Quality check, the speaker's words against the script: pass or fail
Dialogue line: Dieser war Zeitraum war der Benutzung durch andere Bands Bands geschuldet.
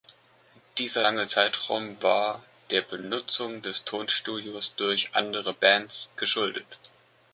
fail